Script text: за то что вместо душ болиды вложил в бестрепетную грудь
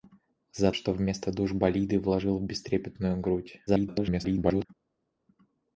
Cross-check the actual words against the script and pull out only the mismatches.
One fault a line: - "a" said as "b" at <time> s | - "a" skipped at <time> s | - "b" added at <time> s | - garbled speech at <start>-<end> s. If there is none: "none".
- "то" skipped at 0.7 s
- garbled speech at 3.7-4.7 s